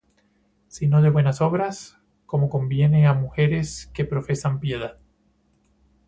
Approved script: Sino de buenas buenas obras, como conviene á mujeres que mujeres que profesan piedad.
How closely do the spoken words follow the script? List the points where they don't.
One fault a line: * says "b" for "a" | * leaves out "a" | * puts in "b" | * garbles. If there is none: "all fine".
* leaves out "buenas"
* leaves out "mujeres que"